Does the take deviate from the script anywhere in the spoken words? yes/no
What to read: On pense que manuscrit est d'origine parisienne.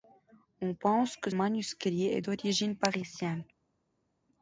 no